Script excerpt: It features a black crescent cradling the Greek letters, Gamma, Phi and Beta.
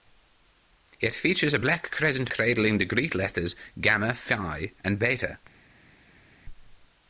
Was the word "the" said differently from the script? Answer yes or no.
no